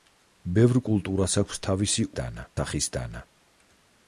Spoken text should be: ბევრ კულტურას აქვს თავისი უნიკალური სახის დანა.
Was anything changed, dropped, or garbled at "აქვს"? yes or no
no